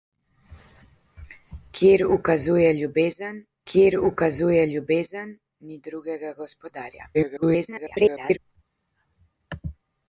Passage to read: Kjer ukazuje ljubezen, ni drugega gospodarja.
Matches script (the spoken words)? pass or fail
fail